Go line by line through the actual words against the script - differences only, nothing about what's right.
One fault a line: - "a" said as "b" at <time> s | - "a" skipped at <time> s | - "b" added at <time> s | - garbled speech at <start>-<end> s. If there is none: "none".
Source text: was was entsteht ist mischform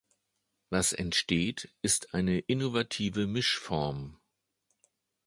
- "was" skipped at 0.9 s
- "eine innovative" added at 2.1 s